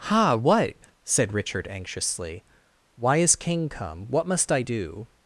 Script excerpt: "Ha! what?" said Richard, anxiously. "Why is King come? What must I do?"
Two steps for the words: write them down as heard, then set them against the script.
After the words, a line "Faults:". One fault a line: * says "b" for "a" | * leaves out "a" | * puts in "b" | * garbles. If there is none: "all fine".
"Ha! what?" said Richard, anxiously. "Why is King come? What must I do?"
Faults:
all fine